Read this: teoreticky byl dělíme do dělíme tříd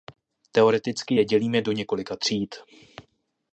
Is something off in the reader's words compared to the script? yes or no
yes